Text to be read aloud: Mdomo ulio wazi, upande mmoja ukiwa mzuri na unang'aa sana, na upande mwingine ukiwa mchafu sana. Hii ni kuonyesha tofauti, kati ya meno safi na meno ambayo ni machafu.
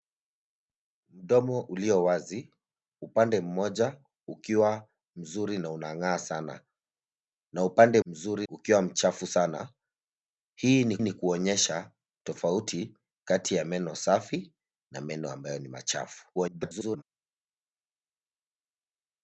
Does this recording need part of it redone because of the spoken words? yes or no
yes